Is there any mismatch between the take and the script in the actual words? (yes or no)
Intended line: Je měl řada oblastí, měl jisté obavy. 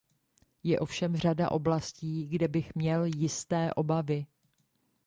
yes